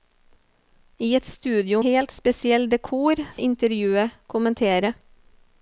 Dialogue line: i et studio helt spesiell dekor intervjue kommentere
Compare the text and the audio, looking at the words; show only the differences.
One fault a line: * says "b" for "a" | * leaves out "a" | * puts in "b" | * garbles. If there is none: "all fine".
all fine